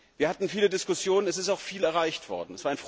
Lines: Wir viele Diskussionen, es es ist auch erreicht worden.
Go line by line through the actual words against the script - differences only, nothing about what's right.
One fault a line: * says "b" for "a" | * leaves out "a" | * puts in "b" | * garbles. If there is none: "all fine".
* puts in "hatten"
* leaves out "es"
* puts in "viel"